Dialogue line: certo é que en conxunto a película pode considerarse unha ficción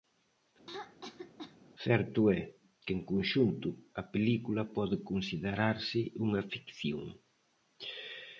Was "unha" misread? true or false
false